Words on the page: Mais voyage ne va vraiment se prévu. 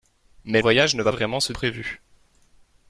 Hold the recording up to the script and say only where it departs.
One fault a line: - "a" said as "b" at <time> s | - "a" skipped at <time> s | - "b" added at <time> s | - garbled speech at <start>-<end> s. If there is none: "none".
none